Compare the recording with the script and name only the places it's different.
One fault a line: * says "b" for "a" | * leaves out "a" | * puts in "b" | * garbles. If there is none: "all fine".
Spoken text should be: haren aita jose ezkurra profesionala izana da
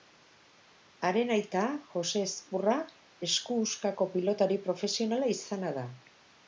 * puts in "esku huskako pilotari"